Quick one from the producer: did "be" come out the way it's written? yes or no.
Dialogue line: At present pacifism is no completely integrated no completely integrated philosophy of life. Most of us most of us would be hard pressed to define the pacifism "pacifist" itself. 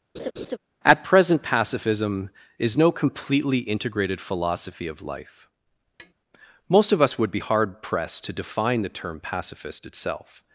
yes